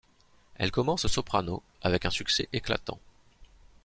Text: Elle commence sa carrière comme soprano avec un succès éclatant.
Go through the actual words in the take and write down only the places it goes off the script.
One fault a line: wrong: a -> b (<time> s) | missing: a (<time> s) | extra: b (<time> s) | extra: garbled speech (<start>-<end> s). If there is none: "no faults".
missing: sa carrière comme (1.1 s)